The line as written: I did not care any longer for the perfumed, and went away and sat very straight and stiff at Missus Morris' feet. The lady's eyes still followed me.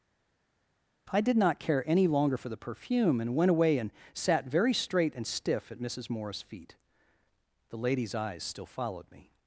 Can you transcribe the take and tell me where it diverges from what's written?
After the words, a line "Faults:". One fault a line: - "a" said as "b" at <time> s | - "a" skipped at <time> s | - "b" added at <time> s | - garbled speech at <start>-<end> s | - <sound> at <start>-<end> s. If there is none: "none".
I did not care any longer for the perfume, and went away and sat very straight and stiff at Missus Morris' feet. The lady's eyes still followed me.
Faults:
- "perfumed" said as "perfume" at 2.6 s